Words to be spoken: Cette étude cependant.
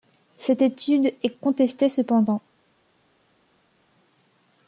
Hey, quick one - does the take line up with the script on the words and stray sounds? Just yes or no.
no